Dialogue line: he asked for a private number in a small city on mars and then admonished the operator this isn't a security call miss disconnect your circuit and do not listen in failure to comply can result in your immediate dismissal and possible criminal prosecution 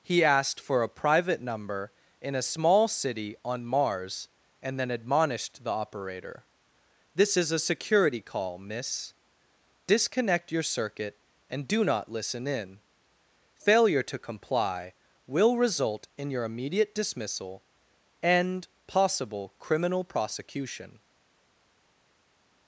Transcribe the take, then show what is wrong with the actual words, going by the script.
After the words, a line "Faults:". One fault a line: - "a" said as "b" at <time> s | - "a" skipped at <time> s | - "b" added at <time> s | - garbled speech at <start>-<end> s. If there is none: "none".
he asked for a private number in a small city on mars and then admonished the operator this is a security call miss disconnect your circuit and do not listen in failure to comply will result in your immediate dismissal and possible criminal prosecution
Faults:
- "isn't" said as "is" at 7.3 s
- "can" said as "will" at 15.3 s